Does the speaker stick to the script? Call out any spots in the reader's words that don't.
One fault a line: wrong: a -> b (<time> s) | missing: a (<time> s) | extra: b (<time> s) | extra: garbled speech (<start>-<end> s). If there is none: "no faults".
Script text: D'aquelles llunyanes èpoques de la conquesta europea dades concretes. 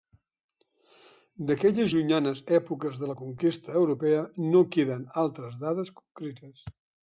extra: no queden altres (4.5 s)